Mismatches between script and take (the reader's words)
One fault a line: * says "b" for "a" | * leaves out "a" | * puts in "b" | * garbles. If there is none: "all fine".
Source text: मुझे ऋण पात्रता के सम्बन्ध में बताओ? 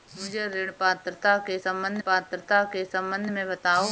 * puts in "पात्रता के सम्बन्ध"